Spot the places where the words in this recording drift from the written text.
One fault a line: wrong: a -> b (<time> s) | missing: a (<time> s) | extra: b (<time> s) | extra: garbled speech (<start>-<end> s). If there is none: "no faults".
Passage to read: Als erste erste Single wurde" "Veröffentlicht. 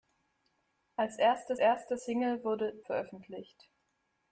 no faults